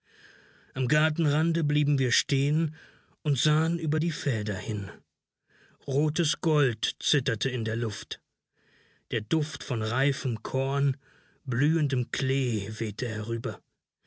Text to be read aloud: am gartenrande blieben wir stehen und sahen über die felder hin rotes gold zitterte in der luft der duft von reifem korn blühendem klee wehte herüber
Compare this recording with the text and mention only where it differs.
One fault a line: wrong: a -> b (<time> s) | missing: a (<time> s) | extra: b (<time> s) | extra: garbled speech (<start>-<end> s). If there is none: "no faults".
no faults